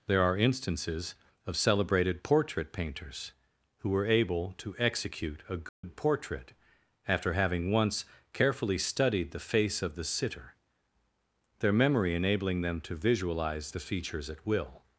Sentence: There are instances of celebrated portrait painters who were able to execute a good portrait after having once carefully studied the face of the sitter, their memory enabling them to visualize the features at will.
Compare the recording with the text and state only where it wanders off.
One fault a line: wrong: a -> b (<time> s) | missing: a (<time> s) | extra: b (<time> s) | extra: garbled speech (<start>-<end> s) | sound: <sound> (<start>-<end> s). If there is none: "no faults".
sound: dropout (5.7-5.8 s)